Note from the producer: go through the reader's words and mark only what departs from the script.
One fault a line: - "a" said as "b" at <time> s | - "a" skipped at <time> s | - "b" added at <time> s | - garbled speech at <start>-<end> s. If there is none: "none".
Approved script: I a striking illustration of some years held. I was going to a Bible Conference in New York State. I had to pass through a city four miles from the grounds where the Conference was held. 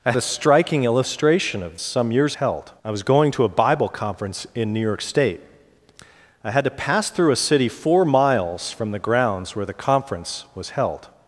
none